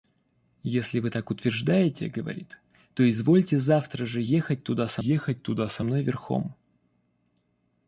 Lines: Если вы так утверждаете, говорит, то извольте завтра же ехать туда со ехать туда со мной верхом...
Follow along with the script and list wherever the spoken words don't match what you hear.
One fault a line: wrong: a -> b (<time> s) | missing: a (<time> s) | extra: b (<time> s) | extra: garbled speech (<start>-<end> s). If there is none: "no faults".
no faults